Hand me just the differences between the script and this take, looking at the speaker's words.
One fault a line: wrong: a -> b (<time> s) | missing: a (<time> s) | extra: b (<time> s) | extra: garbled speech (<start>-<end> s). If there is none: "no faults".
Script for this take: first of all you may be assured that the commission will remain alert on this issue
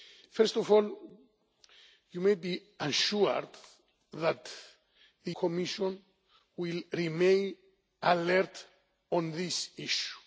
no faults